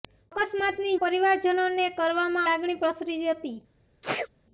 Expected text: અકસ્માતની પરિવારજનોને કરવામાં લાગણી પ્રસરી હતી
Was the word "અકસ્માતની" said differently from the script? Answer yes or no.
no